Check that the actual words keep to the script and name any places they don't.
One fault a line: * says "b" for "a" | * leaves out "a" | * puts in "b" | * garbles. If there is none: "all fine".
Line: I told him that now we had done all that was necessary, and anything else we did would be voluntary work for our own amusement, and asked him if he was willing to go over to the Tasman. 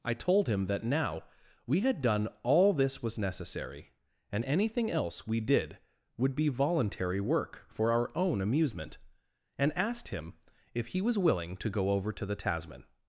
* says "this" for "that"